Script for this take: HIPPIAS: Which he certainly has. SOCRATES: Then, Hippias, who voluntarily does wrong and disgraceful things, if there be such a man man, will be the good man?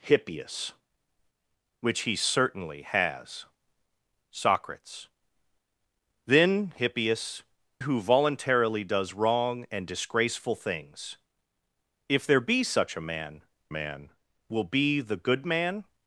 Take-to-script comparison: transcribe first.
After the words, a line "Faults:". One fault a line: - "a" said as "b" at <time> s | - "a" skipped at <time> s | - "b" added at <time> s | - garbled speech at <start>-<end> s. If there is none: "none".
HIPPIAS: Which he certainly has. SOCRATES: Then, Hippias, who voluntarily does wrong and disgraceful things, if there be such a man man, will be the good man?
Faults:
none